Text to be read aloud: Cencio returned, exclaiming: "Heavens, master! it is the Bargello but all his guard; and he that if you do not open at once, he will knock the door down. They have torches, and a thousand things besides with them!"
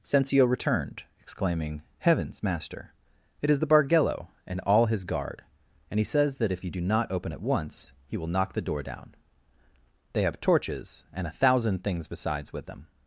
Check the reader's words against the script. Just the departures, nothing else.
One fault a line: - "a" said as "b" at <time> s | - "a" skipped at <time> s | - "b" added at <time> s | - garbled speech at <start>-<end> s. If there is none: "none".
- "but" said as "and" at 4.5 s
- "says" added at 6.0 s